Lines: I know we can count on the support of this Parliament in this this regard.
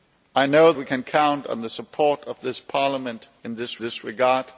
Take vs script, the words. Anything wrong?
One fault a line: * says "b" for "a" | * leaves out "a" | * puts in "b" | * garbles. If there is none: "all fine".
all fine